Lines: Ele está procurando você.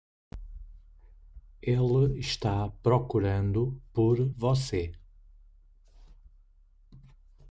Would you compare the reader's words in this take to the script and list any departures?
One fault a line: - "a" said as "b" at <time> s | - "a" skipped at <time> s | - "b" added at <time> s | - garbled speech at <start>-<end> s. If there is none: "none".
- "por" added at 3.9 s